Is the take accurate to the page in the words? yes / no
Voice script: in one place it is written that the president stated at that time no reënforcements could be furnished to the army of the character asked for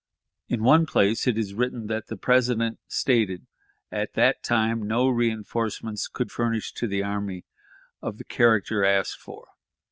no